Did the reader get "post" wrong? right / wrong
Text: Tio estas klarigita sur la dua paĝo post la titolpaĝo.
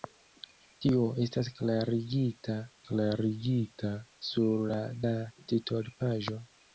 wrong